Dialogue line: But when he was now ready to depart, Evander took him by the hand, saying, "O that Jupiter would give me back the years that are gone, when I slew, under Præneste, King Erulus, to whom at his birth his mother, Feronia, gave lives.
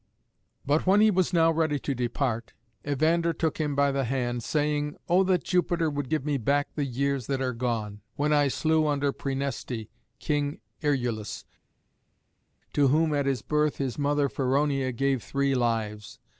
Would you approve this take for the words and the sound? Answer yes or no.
no